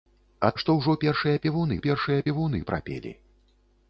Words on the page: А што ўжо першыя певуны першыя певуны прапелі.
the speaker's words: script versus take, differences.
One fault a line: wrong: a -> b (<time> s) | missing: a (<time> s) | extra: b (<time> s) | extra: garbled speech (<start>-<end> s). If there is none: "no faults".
no faults